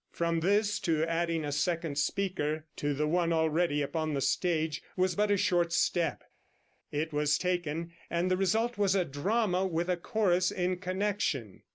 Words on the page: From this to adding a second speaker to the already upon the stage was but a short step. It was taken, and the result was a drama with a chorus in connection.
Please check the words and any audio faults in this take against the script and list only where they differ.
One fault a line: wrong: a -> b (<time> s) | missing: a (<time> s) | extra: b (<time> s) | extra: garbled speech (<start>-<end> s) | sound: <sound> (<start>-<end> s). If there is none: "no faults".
extra: one (3.1 s)